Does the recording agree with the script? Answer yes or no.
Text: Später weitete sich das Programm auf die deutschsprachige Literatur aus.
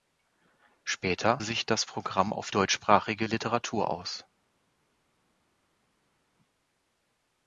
no